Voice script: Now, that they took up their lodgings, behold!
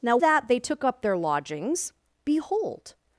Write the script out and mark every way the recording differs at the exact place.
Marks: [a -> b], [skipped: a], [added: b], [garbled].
Now, that they took up their lodgings, behold!